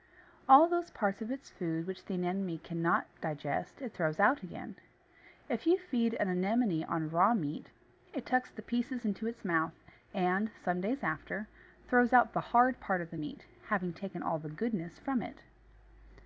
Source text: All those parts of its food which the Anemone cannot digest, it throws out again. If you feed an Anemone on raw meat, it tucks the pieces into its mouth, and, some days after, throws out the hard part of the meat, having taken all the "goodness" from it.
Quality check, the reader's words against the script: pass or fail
pass